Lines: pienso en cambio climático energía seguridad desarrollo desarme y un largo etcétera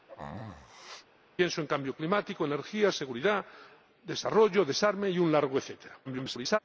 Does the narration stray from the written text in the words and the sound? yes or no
yes